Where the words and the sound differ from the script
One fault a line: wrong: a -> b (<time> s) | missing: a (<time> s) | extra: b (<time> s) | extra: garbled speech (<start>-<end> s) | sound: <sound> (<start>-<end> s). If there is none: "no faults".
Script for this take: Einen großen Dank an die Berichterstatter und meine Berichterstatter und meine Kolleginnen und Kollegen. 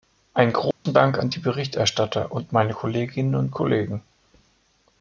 sound: dropout (0.7-0.9 s)
missing: Berichterstatter und meine (2.7 s)